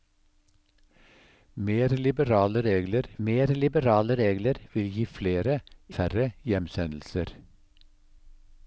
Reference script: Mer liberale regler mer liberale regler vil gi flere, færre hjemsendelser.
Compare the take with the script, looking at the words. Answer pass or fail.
pass